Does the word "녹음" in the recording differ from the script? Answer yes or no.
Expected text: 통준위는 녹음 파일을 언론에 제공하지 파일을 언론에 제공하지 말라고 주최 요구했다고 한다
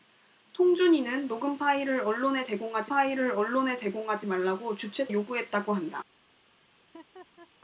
no